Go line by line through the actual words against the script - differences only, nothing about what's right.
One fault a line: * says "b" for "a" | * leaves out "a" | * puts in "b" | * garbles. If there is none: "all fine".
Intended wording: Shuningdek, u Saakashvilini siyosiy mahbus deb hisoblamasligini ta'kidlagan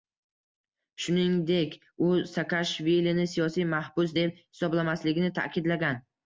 all fine